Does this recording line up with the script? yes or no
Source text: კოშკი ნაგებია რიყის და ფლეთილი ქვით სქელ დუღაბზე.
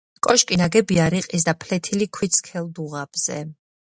yes